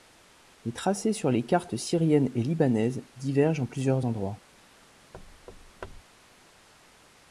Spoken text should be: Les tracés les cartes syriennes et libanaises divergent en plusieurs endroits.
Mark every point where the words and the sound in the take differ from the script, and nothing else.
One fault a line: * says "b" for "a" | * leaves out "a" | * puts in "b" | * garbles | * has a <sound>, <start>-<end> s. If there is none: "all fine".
* puts in "sur"
* has a thud, 5.1-6.0 s